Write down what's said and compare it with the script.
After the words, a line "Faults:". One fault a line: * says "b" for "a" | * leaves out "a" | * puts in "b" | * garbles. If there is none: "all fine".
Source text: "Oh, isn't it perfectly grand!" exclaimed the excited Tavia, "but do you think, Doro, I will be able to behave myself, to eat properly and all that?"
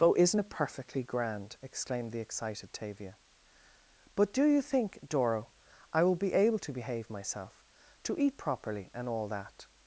"Oh, isn't it perfectly grand!" exclaimed the excited Tavia, "but do you think, Doro, I will be able to behave myself, to eat properly and all that?"
Faults:
all fine